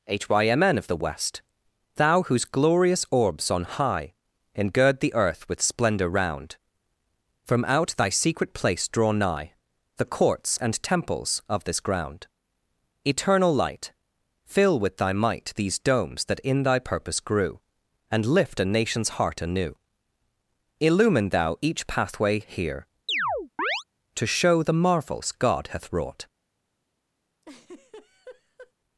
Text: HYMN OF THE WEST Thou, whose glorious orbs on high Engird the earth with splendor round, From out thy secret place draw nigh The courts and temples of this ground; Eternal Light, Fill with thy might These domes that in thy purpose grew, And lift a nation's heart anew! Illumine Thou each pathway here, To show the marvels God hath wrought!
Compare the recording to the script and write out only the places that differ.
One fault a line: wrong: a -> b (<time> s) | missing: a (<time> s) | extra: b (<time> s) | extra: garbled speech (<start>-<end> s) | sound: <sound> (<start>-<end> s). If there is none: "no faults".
sound: chirp (23.1-23.8 s)
sound: laugh (27.4-28.7 s)